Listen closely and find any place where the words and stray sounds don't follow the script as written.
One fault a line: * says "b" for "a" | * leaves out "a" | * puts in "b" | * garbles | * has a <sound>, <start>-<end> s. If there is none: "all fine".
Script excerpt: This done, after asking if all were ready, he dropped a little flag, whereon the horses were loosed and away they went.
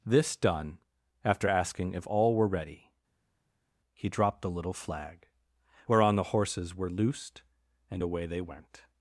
* says "the" for "a"